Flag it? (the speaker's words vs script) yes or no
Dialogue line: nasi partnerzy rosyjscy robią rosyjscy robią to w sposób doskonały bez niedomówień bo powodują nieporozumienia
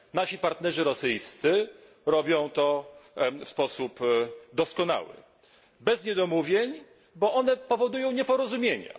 yes